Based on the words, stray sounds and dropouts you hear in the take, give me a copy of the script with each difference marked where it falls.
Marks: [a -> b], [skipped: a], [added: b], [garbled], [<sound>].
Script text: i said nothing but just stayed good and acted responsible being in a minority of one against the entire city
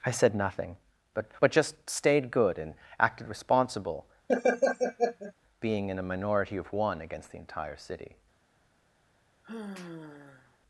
i said nothing but [added: but] just stayed good and acted responsible [laugh] being in a minority of one against the entire city [sigh]